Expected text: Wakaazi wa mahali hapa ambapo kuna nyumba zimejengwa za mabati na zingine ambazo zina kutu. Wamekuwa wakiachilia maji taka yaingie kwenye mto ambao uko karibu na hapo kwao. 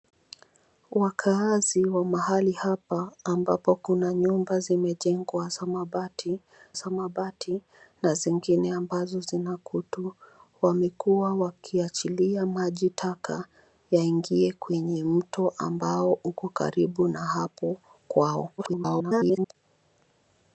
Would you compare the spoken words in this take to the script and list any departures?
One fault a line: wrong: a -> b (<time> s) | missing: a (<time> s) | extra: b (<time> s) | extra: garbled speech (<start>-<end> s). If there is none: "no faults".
extra: za mabati (6.7 s)
extra: garbled speech (18.6-19.5 s)